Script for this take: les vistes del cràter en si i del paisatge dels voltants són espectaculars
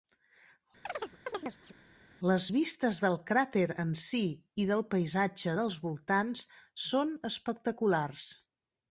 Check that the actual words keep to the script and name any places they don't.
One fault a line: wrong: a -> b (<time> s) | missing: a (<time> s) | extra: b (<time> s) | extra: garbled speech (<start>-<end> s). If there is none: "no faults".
no faults